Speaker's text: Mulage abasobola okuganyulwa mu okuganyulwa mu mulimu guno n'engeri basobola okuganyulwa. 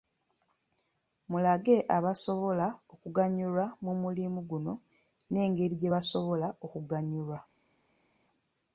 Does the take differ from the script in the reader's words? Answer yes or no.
yes